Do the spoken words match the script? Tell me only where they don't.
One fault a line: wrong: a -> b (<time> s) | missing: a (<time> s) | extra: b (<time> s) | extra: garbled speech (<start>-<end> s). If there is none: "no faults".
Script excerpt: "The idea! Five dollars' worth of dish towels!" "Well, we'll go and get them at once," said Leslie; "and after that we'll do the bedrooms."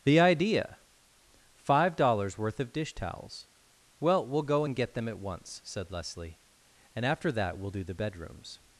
no faults